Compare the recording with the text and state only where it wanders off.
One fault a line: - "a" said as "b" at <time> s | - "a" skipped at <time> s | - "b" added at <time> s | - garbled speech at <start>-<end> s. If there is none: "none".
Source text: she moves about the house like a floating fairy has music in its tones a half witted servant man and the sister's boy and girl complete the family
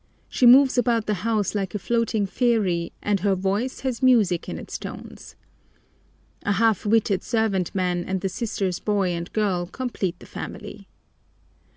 - "and her voice" added at 3.0 s